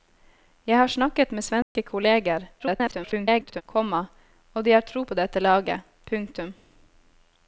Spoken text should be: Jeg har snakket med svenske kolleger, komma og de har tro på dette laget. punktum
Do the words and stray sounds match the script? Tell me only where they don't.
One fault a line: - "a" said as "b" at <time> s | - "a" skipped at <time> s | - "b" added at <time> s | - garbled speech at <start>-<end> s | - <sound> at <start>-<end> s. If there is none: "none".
- dropout at 1.6-1.8 s
- garbled speech at 2.6-3.6 s